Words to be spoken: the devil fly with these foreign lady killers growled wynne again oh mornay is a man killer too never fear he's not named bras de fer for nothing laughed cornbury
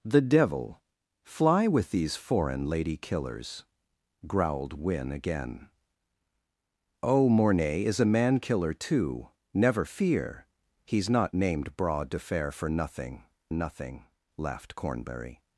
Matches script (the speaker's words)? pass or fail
fail